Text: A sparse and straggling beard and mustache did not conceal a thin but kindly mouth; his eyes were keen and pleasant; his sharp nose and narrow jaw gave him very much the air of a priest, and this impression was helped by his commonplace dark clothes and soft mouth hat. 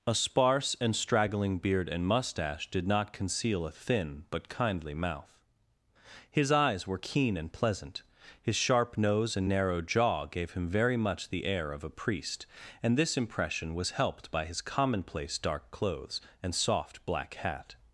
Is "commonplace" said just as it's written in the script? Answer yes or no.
yes